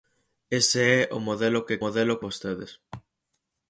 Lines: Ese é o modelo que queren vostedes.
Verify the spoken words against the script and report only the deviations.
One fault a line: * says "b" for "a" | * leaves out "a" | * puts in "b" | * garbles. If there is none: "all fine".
* says "modelo" for "queren"